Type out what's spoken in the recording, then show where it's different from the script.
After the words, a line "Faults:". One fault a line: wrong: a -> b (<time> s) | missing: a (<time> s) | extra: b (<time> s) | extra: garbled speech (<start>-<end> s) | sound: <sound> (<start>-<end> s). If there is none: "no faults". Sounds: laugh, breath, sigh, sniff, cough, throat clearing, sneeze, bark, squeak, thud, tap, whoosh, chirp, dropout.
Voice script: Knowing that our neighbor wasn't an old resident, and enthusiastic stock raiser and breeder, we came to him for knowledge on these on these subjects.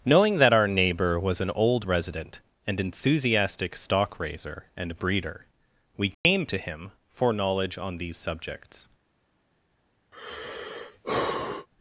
Knowing that our neighbor was an old resident, and enthusiastic stock raiser and breeder, we came to him for knowledge on these subjects.
Faults:
wrong: wasn't -> was (1.2 s)
sound: dropout (6.1-6.2 s)
missing: on these (8.2 s)
sound: sigh (10.1-11.7 s)